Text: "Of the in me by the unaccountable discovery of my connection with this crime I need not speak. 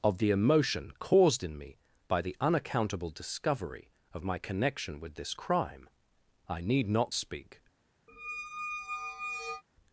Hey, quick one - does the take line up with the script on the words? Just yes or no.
no